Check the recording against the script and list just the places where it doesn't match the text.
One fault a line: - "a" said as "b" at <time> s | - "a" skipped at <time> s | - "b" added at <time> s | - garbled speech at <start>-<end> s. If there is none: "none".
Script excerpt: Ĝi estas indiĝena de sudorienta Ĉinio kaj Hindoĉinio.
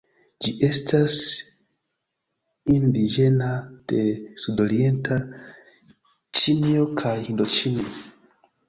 none